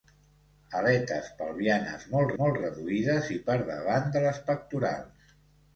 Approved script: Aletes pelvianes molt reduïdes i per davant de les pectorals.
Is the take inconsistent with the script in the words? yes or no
yes